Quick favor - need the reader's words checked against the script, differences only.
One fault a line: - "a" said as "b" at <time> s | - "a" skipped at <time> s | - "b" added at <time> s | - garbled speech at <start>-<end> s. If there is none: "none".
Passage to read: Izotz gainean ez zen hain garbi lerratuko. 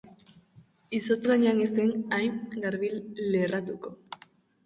none